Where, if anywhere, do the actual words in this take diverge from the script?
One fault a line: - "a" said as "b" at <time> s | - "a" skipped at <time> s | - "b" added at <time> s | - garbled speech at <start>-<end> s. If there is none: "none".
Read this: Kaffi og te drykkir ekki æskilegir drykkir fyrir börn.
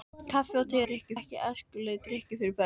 none